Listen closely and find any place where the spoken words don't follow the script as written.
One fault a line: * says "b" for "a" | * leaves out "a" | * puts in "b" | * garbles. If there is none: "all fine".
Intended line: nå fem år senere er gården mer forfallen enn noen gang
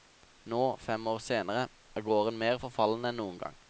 all fine